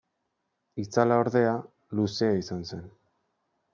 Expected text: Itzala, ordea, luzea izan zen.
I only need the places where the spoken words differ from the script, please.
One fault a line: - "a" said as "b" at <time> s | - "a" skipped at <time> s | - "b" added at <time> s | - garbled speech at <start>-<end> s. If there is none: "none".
none